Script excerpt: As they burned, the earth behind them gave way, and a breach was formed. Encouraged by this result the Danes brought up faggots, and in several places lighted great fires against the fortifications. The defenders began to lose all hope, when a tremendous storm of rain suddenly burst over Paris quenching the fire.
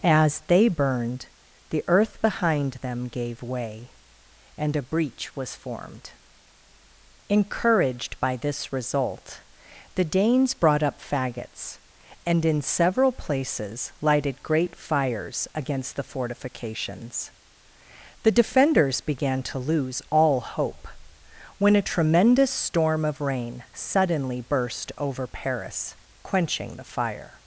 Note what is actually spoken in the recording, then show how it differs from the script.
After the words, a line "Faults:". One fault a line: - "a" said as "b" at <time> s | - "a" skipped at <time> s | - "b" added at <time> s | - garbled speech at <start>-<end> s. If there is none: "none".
As they burned, the earth behind them gave way, and a breach was formed. Encouraged by this result the Danes brought up faggots, and in several places lighted great fires against the fortifications. The defenders began to lose all hope, when a tremendous storm of rain suddenly burst over Paris quenching the fire.
Faults:
none